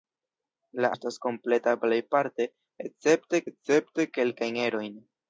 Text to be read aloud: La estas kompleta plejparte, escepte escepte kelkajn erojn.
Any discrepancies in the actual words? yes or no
no